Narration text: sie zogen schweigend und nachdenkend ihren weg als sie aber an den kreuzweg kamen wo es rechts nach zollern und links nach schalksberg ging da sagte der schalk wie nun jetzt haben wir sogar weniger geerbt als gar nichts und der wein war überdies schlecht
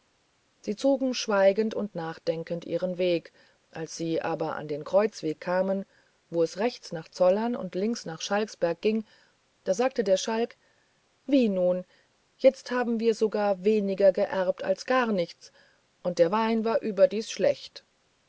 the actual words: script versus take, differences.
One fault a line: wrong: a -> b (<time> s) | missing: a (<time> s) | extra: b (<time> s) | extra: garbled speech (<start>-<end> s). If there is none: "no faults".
no faults